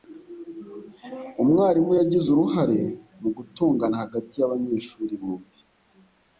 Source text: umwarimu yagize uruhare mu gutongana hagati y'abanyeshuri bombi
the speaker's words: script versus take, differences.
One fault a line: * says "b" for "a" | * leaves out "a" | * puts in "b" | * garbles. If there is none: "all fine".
all fine